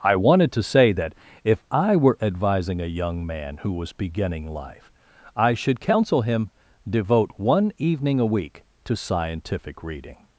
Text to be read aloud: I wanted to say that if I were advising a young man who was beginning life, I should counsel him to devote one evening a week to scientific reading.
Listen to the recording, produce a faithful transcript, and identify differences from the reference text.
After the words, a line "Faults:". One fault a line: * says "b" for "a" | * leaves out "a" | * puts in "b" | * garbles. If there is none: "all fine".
I wanted to say that if I were advising a young man who was beginning life, I should counsel him devote one evening a week to scientific reading.
Faults:
* leaves out "to"